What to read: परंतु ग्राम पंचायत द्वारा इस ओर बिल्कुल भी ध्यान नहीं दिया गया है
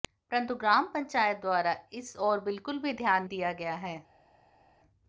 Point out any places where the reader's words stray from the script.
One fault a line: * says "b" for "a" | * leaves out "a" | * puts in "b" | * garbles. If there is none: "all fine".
* leaves out "नहीं"